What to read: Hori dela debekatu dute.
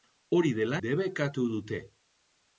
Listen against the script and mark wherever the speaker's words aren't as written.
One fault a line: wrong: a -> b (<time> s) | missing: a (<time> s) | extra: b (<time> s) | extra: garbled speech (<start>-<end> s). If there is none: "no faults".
no faults